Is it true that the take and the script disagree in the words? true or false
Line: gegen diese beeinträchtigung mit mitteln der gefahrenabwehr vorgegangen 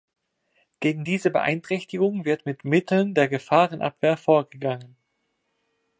true